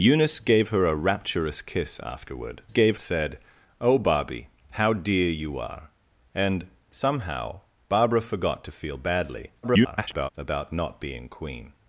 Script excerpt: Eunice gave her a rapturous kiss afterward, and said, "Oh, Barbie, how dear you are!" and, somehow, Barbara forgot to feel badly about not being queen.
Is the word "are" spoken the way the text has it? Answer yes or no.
yes